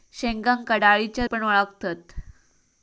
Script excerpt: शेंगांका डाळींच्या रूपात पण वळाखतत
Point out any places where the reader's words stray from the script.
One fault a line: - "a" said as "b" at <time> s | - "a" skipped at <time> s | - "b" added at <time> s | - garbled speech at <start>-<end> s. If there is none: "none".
- "रूपात" skipped at 1.3 s